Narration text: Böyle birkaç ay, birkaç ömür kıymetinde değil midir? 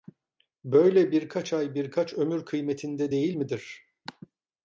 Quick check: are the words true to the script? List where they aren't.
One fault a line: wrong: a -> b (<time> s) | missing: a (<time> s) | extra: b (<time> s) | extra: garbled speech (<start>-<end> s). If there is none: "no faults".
no faults